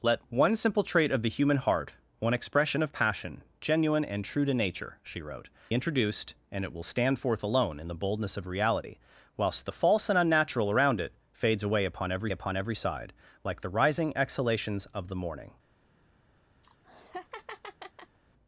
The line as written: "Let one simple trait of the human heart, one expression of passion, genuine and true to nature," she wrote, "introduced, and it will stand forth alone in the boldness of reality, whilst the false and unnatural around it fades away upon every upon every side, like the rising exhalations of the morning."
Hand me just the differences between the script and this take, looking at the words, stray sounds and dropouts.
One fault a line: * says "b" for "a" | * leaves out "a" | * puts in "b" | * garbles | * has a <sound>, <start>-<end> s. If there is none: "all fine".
* has a laugh, 16.6-18.2 s